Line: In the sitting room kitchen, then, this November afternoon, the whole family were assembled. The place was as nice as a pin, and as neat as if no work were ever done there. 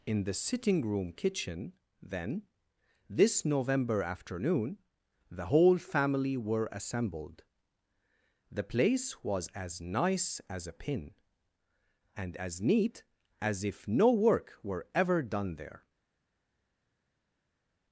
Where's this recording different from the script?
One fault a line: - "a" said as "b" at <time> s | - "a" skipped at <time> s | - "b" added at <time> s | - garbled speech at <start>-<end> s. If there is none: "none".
none